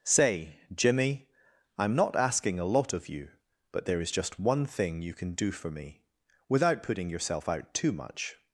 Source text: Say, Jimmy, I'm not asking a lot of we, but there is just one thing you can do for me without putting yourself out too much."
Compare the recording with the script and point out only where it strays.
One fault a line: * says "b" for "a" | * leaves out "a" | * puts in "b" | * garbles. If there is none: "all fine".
* says "you" for "we"